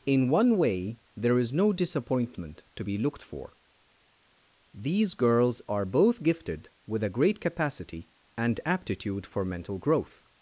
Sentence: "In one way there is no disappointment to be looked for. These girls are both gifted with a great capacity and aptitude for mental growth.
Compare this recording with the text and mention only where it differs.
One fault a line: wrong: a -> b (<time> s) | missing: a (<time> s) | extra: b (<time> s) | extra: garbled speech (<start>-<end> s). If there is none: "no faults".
no faults